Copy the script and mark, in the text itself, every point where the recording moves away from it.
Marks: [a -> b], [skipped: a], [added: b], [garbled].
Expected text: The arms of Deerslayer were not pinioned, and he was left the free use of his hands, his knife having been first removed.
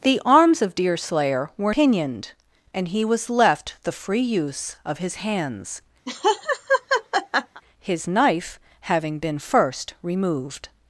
The arms of Deerslayer were [skipped: not] pinioned, and he was left the free use of his hands, his knife having been first removed.